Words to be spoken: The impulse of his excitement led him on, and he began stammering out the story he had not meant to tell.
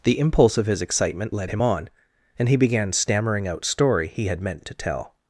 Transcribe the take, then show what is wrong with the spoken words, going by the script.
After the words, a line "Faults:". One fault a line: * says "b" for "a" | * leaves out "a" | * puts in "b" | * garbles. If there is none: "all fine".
The impulse of his excitement led him on, and he began stammering out story he had meant to tell.
Faults:
* leaves out "the"
* leaves out "not"